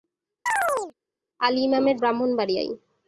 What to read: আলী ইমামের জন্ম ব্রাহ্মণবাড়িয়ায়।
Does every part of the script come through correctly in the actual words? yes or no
no